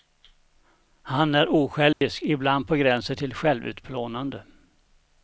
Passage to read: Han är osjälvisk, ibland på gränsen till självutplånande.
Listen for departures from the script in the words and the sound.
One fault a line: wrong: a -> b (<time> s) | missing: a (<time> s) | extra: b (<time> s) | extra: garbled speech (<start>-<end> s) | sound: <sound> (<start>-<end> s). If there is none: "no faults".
sound: dropout (1.9-2.0 s)